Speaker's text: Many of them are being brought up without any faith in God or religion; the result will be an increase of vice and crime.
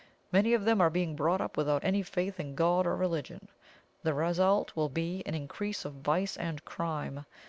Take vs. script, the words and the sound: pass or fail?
pass